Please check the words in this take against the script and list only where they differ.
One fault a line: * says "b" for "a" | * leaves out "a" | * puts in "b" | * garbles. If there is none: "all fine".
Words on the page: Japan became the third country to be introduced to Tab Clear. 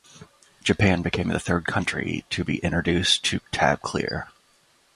all fine